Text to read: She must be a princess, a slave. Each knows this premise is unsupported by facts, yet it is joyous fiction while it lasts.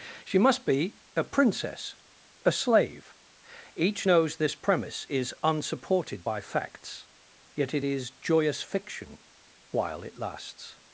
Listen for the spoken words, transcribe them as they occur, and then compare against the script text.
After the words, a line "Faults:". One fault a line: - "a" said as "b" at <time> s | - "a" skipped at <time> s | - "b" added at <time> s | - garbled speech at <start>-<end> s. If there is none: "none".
She must be a princess, a slave. Each knows this premise is unsupported by facts, yet it is joyous fiction while it lasts.
Faults:
none